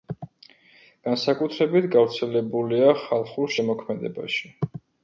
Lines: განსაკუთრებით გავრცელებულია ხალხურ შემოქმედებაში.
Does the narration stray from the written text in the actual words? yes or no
no